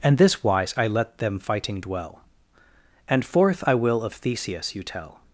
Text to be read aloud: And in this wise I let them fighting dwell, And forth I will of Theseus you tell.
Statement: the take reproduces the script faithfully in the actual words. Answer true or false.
false